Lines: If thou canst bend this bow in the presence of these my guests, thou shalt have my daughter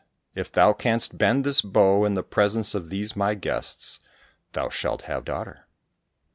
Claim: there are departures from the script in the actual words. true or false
true